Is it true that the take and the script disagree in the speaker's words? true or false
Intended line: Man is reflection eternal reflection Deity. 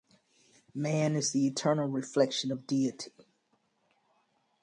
true